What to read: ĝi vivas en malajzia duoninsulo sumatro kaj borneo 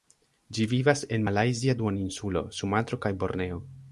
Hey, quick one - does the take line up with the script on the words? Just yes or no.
yes